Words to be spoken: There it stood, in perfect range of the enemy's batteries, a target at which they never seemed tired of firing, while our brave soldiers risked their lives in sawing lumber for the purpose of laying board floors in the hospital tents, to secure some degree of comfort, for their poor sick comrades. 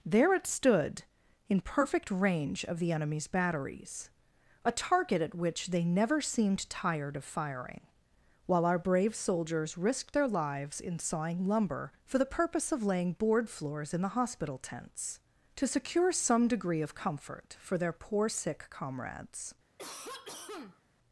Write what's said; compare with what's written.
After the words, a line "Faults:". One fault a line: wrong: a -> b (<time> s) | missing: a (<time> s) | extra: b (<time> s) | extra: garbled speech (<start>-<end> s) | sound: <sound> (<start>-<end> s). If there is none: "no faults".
There it stood, in perfect range of the enemy's batteries, a target at which they never seemed tired of firing, while our brave soldiers risked their lives in sawing lumber for the purpose of laying board floors in the hospital tents, to secure some degree of comfort, for their poor sick comrades.
Faults:
sound: cough (19.8-20.8 s)